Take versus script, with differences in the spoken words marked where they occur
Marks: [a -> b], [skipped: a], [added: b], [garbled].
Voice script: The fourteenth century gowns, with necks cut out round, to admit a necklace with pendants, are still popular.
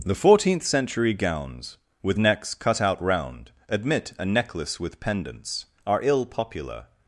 The fourteenth century gowns, with necks cut out round, [skipped: to] admit a necklace with pendants, are [still -> ill] popular.